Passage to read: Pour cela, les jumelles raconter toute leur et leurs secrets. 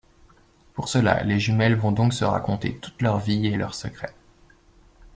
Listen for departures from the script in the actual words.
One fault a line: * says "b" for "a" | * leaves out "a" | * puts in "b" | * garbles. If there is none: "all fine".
* puts in "vont donc se"
* puts in "vie"